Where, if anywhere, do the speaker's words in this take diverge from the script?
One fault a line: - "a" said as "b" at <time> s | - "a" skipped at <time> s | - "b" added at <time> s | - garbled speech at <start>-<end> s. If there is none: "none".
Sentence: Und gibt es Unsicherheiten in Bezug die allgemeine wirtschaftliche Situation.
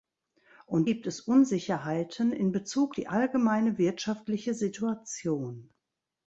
none